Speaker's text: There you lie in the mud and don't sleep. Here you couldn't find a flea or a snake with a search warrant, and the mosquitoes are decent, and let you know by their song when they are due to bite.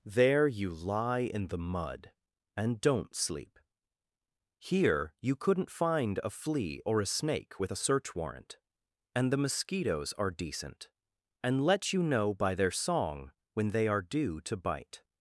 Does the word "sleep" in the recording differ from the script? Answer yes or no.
no